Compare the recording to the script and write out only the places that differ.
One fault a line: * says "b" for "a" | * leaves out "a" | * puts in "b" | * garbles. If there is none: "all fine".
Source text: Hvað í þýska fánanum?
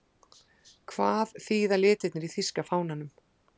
* puts in "þýða litirnir"